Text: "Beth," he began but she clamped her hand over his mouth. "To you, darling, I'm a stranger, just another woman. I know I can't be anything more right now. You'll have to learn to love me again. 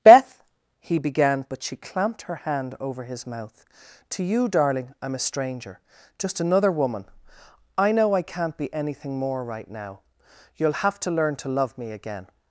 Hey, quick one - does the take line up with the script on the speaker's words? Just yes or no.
yes